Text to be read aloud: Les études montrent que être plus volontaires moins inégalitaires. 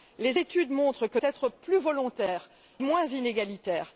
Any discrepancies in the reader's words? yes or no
no